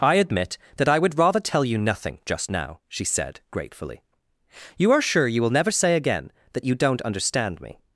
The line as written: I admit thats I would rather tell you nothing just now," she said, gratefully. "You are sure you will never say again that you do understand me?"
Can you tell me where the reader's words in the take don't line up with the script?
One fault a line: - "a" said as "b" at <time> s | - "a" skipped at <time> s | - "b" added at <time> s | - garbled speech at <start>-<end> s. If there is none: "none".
- "thats" said as "that" at 0.8 s
- "do" said as "don't" at 6.7 s